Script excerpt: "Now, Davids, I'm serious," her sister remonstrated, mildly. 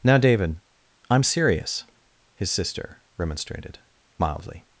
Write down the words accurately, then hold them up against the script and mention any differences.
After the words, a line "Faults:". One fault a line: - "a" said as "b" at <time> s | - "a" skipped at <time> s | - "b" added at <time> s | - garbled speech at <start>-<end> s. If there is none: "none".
"Now, David, I'm serious," his sister remonstrated, mildly.
Faults:
- "Davids" said as "David" at 0.2 s
- "her" said as "his" at 2.3 s